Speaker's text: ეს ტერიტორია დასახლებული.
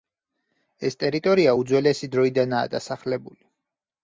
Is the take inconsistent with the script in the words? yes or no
yes